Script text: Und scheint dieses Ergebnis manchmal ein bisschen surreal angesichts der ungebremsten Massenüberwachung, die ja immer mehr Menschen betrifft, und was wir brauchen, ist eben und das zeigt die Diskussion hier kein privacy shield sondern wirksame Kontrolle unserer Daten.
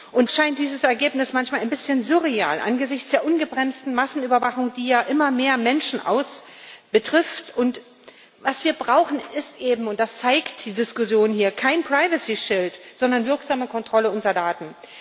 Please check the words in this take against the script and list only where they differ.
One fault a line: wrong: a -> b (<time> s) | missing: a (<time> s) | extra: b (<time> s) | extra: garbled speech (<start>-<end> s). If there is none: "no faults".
no faults